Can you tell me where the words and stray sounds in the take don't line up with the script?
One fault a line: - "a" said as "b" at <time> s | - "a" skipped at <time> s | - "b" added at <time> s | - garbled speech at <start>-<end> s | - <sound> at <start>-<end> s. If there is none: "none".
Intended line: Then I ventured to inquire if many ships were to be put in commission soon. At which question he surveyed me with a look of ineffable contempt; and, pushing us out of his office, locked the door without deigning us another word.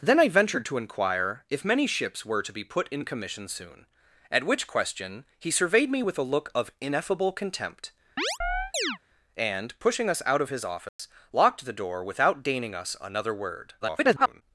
- chirp at 8.2-9.0 s
- dropout at 10.9-11.0 s
- garbled speech at 13.8-14.4 s